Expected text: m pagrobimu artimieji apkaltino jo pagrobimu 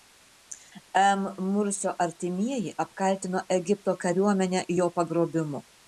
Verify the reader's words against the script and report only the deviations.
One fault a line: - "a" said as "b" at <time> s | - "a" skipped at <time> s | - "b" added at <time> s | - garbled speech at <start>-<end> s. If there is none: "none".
- "pagrobimu" said as "mursio" at 1.5 s
- "egipto kariuomenę" added at 3.6 s